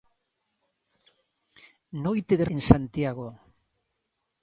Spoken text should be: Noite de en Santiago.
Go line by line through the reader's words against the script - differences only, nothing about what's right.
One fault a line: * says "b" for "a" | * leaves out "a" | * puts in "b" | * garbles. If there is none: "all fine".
all fine